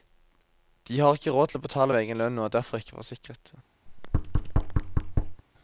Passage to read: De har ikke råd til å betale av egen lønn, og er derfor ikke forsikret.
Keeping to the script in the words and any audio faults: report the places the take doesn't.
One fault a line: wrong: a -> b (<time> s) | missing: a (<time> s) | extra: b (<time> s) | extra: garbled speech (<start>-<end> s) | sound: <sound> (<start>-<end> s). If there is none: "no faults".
sound: thud (3.9-5.4 s)